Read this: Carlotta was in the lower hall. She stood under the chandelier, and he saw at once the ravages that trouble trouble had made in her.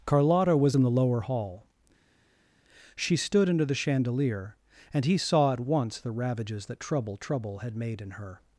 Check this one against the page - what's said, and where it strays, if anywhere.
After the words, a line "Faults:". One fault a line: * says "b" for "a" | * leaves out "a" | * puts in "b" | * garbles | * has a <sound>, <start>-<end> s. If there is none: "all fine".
Carlotta was in the lower hall. She stood under the chandelier, and he saw at once the ravages that trouble trouble had made in her.
Faults:
all fine